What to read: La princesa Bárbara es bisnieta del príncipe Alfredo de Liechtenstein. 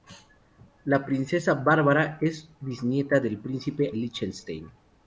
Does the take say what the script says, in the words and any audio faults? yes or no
no